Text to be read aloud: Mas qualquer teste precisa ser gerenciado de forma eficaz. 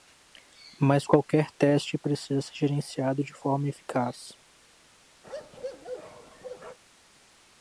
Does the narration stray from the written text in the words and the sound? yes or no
yes